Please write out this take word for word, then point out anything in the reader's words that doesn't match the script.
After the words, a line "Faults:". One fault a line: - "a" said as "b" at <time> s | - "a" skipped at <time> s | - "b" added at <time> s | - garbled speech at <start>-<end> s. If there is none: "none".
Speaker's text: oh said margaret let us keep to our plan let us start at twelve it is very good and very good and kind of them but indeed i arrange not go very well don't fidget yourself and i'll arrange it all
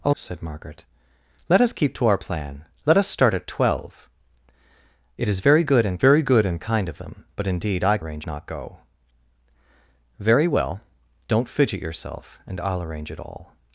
oh said margaret let us keep to our plan let us start at twelve it is very good and very good and kind of them but indeed i arrange not go very well don't fidget yourself and i'll arrange it all
Faults:
none